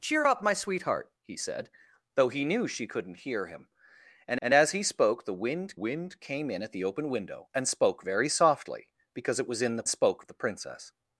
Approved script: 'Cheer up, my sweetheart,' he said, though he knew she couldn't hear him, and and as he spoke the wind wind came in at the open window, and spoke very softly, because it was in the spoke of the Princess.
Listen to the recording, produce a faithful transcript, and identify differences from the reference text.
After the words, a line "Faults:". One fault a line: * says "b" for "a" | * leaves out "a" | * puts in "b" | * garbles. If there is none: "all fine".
'Cheer up, my sweetheart,' he said, though he knew she couldn't hear him, and and as he spoke the wind wind came in at the open window, and spoke very softly, because it was in the spoke of the Princess.
Faults:
all fine